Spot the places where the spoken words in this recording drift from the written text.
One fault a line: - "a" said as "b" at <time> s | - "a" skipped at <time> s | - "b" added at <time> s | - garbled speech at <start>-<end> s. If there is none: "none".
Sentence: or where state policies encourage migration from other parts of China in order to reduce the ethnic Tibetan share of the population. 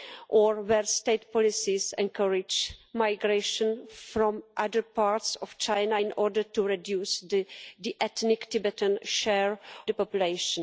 - "of" skipped at 9.6 s